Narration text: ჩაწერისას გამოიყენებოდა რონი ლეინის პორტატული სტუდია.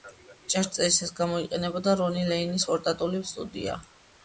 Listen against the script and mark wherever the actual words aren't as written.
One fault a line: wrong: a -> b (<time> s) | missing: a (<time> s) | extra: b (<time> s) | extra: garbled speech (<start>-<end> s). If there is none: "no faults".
no faults